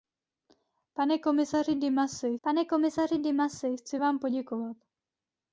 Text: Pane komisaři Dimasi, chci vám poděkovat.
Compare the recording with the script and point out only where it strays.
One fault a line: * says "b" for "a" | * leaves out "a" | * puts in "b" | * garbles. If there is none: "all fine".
* puts in "pane komisaři Dimasi"